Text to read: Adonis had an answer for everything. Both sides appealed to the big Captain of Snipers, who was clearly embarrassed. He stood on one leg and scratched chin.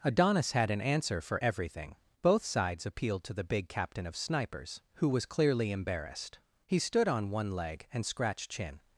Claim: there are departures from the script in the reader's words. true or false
false